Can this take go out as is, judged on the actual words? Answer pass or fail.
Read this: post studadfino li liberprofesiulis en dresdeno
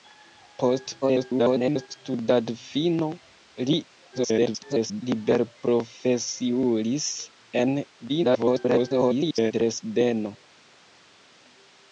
fail